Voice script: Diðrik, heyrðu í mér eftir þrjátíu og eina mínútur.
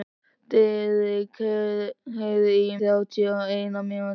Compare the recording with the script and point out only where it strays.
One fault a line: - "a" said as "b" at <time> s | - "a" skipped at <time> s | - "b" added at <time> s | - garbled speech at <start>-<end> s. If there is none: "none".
- "mér eftir" skipped at 2.8 s